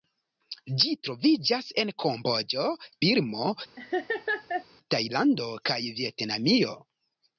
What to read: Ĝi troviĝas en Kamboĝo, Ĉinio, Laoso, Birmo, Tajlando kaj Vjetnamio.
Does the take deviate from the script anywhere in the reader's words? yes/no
yes